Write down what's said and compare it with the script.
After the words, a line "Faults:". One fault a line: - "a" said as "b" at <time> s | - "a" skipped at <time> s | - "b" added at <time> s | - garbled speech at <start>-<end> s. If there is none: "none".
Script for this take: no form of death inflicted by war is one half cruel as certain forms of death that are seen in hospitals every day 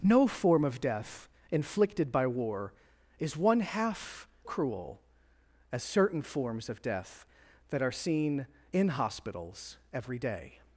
no form of death inflicted by war is one half cruel as certain forms of death that are seen in hospitals every day
Faults:
none